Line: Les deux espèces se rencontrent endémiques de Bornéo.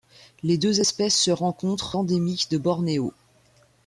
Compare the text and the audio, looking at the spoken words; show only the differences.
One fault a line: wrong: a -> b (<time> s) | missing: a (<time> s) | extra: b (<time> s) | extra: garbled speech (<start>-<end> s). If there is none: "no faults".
no faults